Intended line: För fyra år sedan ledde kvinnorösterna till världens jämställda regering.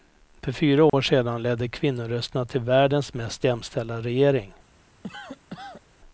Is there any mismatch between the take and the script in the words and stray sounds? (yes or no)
yes